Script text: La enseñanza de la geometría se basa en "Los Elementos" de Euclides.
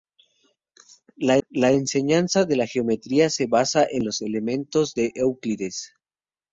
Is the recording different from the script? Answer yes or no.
yes